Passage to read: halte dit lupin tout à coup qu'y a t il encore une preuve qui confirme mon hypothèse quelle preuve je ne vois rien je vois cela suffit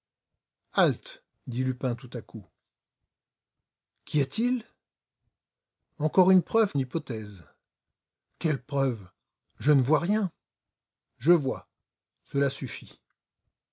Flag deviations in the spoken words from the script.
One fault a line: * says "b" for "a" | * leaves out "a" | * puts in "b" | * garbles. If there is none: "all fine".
* leaves out "qui confirme mon"